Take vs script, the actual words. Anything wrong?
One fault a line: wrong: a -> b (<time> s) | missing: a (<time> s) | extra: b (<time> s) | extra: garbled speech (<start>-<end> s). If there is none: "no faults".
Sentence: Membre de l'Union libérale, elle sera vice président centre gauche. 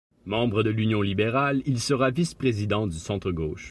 wrong: elle -> il (1.7 s)
extra: du (2.9 s)